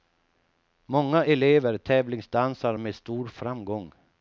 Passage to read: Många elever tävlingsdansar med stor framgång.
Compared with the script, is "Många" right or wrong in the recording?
right